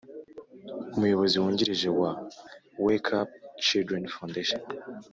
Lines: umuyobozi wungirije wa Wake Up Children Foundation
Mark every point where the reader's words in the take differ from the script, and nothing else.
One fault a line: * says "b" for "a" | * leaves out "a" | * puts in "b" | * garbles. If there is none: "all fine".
all fine